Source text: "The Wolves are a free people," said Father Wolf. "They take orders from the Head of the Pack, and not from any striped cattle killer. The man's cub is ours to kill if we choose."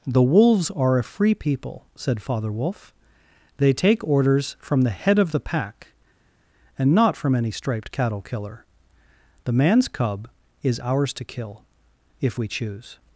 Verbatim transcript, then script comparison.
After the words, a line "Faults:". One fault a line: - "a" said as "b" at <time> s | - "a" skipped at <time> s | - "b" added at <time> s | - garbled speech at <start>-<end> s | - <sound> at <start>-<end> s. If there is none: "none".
"The Wolves are a free people," said Father Wolf. "They take orders from the Head of the Pack, and not from any striped cattle killer. The man's cub is ours to kill if we choose."
Faults:
none